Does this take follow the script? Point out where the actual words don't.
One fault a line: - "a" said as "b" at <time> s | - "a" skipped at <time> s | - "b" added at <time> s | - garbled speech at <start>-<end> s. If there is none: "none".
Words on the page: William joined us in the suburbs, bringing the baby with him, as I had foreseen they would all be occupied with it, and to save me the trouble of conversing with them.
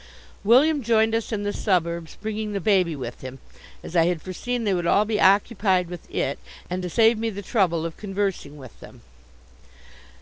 none